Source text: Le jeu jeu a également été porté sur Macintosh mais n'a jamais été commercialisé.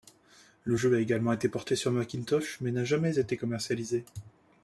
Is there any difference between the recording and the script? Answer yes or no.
yes